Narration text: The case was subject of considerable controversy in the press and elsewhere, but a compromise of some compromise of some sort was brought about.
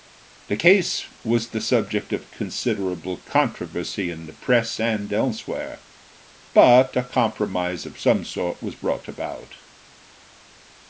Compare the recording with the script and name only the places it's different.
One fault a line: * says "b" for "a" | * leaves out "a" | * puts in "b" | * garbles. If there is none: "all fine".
* puts in "the"
* leaves out "compromise of some"